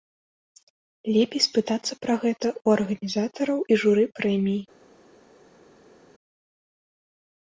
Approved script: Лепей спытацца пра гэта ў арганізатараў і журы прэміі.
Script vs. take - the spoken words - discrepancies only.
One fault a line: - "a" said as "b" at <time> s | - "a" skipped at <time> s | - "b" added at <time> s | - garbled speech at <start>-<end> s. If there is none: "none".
none